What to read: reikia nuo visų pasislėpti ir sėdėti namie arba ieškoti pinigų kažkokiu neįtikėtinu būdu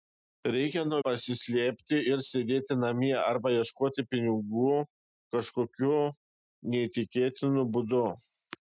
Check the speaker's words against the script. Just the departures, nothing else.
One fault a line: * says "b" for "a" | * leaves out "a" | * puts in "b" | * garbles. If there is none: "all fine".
* leaves out "visų"